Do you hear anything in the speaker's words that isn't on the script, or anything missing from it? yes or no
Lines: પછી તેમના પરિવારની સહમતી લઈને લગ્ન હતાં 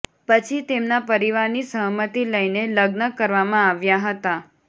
yes